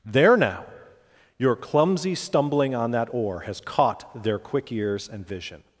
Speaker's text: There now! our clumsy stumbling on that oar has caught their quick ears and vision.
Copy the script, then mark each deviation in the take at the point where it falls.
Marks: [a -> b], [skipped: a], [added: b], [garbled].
There now! [our -> your] clumsy stumbling on that oar has caught their quick ears and vision.